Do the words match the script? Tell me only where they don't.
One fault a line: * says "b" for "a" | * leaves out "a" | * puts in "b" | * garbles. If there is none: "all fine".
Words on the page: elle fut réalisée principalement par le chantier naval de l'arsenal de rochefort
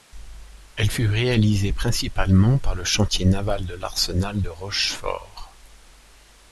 all fine